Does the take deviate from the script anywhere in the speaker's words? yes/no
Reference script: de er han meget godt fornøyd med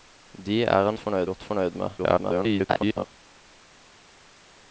yes